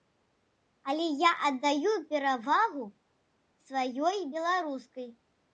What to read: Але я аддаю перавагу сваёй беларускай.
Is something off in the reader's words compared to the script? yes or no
no